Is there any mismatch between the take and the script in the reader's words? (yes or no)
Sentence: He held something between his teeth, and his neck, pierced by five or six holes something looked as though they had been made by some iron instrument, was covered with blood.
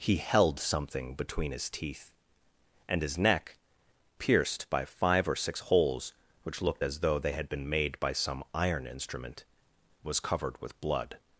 yes